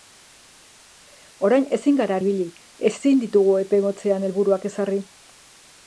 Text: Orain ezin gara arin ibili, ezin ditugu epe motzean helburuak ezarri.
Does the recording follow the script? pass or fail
fail